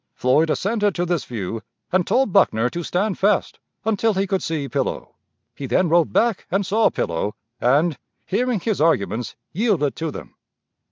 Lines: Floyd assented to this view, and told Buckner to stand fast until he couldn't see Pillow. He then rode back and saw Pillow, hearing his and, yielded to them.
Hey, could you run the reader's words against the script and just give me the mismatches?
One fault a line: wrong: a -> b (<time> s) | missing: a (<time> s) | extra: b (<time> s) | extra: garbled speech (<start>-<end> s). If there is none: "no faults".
wrong: couldn't -> could (4.2 s)
extra: and (7.6 s)
wrong: and -> arguments (8.8 s)